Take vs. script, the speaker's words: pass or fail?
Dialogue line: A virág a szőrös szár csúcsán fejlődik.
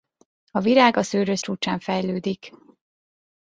fail